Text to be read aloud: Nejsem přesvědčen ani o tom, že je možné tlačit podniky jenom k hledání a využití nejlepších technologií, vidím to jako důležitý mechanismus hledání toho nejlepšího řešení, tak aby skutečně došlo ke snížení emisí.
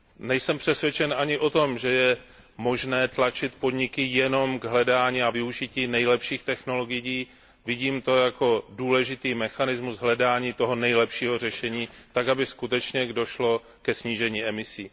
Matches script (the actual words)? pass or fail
pass